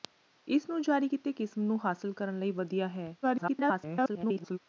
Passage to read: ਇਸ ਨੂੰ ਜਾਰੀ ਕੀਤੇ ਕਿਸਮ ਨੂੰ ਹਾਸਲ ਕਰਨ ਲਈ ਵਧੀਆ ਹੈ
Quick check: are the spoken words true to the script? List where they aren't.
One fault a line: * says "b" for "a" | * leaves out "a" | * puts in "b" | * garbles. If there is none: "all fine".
* garbles